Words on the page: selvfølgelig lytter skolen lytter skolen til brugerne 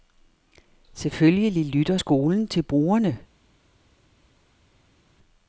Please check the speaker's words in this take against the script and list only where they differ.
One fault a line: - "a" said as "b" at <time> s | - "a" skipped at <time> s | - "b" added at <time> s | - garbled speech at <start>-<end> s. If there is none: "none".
- "lytter skolen" skipped at 2.5 s